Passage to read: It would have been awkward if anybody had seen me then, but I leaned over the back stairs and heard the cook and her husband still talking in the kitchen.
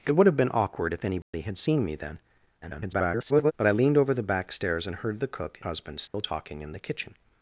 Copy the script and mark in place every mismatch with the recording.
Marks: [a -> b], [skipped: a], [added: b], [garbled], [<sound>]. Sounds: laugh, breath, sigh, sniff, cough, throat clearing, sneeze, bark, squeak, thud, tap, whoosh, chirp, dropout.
It would have been awkward if anybody [dropout] had seen me then, [garbled] but I leaned over the back stairs and heard the cook [skipped: and her] husband still [dropout] talking in the kitchen.